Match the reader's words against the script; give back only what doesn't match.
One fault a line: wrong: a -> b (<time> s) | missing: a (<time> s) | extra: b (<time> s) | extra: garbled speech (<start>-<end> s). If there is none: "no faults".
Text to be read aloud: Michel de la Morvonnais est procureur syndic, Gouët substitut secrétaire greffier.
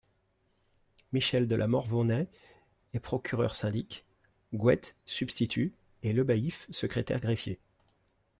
extra: et Le Baillif (6.0 s)